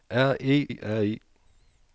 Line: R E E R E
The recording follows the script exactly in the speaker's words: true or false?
true